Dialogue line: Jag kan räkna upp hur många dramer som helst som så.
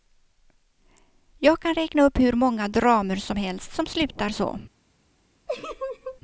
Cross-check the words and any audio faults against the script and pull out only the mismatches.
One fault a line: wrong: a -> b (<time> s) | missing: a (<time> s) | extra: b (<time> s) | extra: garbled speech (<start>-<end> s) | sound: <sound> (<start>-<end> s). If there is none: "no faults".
extra: slutar (3.9 s)
sound: laugh (5.5-6.2 s)